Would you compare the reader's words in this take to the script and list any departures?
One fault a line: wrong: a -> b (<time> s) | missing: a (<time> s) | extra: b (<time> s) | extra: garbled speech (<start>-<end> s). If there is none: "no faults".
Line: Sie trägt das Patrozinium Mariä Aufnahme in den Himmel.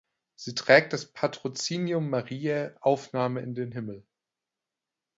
no faults